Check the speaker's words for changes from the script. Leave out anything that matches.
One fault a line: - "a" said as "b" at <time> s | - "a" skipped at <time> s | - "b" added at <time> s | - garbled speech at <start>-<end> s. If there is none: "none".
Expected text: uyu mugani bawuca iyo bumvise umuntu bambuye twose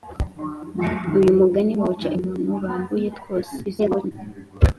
- "iyo bumvise" skipped at 2.1 s
- garbled speech at 3.6-4.1 s